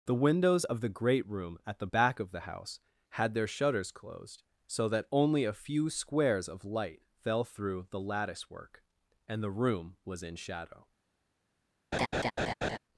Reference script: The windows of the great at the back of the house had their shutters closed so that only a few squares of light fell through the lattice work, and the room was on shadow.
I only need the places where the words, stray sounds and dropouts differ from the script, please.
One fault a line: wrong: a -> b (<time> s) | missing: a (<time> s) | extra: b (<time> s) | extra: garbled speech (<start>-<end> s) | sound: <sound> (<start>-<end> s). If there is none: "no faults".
extra: room (1.3 s)
wrong: on -> in (10.2 s)
sound: laugh (11.9-12.8 s)